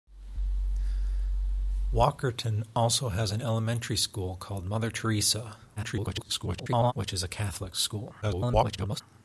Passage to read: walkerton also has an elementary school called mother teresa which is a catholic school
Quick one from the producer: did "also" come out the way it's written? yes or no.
yes